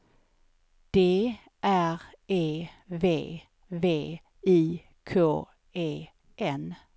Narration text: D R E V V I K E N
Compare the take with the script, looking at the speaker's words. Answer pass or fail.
pass